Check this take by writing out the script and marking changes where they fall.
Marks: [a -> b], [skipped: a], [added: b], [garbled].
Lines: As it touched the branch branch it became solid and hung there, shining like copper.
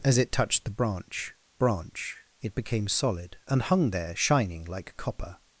As it touched the branch branch it became solid and hung there, shining like copper.